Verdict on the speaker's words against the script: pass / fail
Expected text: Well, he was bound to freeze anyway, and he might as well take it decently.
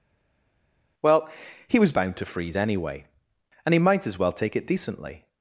pass